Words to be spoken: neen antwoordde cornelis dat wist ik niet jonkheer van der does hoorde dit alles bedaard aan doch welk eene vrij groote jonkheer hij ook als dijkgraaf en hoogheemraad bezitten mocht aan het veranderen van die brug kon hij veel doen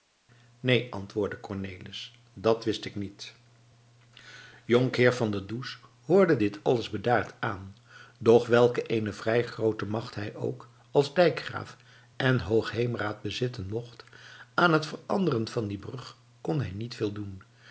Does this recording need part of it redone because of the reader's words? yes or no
yes